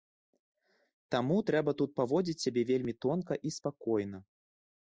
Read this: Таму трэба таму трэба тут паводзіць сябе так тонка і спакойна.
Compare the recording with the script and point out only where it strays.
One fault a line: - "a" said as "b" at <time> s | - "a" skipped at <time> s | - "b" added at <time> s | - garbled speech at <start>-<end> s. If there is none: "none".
- "таму трэба" skipped at 1.7 s
- "так" said as "вельмі" at 2.7 s